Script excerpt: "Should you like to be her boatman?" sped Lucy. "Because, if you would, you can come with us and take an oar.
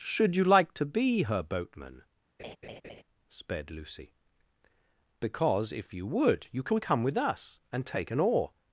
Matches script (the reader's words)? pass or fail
pass